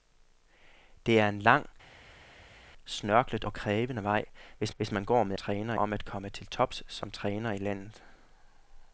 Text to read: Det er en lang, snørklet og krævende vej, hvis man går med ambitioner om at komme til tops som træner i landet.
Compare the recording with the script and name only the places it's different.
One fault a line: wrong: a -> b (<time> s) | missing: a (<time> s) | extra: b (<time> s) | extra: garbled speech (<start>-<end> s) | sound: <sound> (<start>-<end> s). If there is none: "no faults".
extra: hvis (4.8 s)
wrong: ambitioner -> træner (5.4 s)